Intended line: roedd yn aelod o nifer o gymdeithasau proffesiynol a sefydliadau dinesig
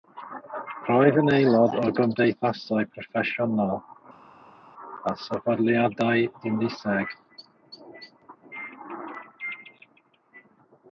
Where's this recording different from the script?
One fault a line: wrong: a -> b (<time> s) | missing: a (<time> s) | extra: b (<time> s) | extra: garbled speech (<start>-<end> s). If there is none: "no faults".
missing: nifer (1.8 s)